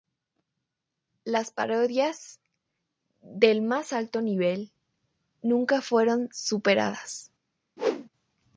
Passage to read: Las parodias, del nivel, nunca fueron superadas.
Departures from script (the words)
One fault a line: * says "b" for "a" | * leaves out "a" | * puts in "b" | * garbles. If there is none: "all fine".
* puts in "más alto"